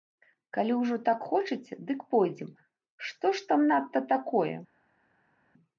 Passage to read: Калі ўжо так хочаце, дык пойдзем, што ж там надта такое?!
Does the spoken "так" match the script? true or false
true